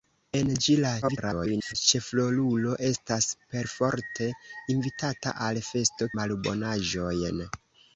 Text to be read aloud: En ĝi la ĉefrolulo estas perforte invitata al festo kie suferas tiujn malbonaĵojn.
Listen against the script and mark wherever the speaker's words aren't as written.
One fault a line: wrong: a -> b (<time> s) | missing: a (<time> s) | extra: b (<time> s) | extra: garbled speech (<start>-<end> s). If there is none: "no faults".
extra: garbled speech (1.0-1.7 s)
missing: kie suferas tiujn (6.1 s)